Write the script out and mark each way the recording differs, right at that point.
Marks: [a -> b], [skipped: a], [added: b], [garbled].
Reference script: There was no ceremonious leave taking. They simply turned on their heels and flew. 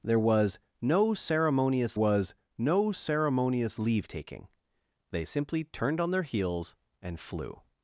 There was no ceremonious [added: was no ceremonious] leave taking. They simply turned on their heels and flew.